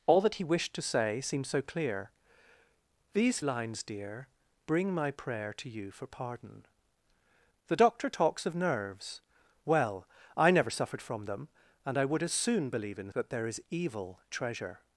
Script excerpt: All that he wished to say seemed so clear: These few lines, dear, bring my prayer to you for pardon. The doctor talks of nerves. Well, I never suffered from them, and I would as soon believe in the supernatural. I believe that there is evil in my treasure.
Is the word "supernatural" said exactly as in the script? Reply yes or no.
no